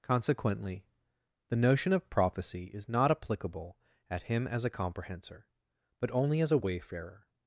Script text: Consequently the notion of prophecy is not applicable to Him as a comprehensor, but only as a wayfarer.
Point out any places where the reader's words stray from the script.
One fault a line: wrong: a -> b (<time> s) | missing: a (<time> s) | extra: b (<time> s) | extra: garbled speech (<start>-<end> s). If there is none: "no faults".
wrong: to -> at (4.1 s)